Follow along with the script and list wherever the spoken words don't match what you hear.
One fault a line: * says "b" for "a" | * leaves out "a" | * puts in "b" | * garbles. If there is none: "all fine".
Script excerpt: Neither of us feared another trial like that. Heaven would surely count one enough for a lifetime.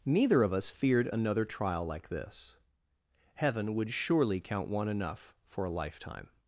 * says "this" for "that"